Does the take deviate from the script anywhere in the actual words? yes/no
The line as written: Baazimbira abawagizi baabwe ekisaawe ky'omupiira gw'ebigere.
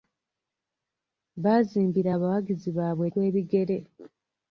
yes